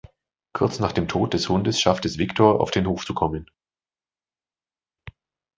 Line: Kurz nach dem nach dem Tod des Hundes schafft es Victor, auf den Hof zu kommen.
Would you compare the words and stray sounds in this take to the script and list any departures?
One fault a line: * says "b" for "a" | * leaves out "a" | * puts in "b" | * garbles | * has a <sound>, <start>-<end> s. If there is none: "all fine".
* leaves out "nach dem"